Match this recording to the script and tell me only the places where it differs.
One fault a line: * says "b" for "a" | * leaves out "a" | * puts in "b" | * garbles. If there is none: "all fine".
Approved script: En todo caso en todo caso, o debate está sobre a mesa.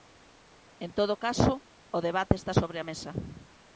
* leaves out "en todo caso"